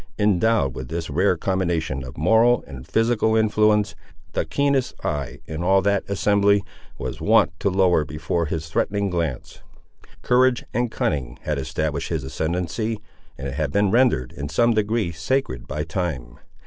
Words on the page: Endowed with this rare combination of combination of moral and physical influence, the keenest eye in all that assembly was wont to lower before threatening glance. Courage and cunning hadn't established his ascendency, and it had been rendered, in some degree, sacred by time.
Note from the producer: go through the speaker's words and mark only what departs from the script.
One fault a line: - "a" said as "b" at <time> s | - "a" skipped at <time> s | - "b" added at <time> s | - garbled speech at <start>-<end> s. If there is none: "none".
- "combination of" skipped at 2.2 s
- "his" added at 8.5 s
- "hadn't" said as "had" at 11.4 s